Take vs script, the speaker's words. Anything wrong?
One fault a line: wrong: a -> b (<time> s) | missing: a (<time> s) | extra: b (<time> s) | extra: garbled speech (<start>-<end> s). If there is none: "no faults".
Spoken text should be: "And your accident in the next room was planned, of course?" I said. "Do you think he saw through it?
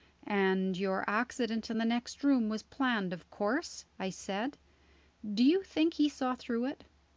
no faults